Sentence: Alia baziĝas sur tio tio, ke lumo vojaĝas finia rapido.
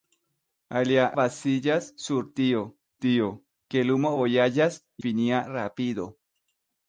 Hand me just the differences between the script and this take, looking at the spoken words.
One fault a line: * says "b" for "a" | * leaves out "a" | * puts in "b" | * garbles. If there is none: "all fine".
all fine